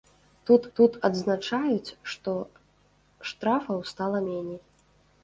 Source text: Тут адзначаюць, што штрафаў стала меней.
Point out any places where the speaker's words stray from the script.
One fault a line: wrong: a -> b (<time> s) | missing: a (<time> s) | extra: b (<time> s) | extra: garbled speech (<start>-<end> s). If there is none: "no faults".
extra: тут (0.8 s)